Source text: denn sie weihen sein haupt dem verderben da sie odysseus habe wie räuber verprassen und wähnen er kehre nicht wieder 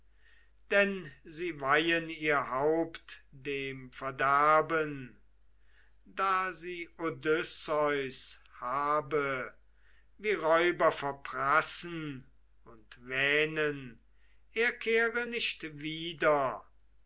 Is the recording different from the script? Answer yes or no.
yes